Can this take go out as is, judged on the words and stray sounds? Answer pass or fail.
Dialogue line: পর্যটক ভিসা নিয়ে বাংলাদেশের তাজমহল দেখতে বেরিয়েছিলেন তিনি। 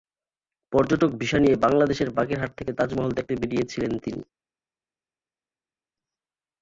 fail